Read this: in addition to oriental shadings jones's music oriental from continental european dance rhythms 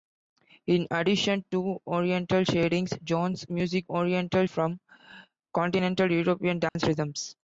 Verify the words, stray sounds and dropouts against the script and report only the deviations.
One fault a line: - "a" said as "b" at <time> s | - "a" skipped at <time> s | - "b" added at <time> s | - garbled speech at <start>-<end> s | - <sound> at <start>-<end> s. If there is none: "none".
- dropout at 6.7-6.8 s